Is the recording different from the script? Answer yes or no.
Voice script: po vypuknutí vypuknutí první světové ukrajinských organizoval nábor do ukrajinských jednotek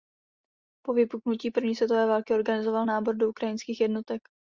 yes